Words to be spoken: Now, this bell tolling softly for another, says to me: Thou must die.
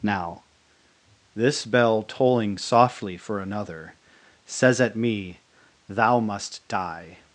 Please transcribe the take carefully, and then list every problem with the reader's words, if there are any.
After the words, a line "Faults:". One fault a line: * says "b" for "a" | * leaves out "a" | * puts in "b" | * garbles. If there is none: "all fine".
Now, this bell tolling softly for another, says at me: Thou must die.
Faults:
* says "at" for "to"